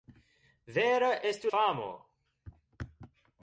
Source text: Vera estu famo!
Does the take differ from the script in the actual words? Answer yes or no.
no